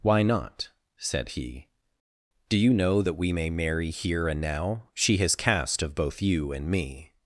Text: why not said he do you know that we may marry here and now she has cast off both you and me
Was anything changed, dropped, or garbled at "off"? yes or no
yes